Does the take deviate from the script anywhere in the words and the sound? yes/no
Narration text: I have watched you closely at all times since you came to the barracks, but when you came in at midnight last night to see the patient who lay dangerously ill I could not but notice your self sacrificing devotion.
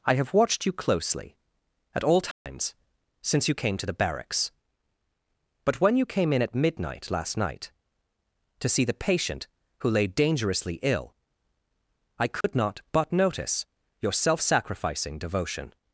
yes